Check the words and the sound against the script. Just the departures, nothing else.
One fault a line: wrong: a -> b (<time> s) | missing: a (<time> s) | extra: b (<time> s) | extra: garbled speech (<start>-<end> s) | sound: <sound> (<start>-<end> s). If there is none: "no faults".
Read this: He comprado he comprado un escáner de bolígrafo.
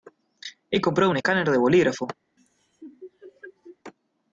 missing: he comprado (1.1 s)
sound: laugh (2.4-3.8 s)